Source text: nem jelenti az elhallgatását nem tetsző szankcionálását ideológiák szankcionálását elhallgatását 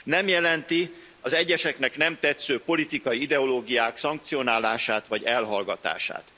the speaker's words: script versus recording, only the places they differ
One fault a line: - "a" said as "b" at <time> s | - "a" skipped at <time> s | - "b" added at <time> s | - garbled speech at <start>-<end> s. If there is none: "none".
- "elhallgatását" said as "egyeseknek" at 1.3 s
- "szankcionálását" said as "politikai" at 2.6 s
- "vagy" added at 5.1 s